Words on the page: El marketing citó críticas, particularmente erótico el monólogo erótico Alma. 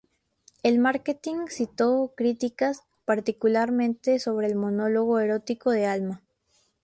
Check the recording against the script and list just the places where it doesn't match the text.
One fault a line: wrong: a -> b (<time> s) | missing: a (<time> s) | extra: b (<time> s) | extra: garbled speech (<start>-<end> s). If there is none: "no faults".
wrong: erótico -> sobre (4.2 s)
extra: de (5.7 s)